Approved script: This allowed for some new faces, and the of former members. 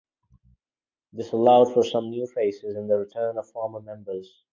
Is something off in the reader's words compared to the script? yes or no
yes